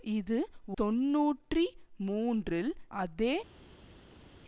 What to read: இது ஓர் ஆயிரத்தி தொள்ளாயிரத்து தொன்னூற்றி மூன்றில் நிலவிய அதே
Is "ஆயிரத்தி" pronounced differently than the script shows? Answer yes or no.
yes